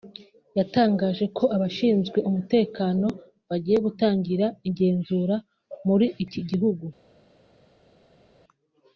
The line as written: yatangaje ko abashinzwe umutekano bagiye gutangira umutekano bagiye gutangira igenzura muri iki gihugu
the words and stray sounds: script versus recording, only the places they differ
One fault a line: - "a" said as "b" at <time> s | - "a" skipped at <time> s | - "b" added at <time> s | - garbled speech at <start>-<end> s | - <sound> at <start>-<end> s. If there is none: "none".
- "umutekano bagiye gutangira" skipped at 4.5 s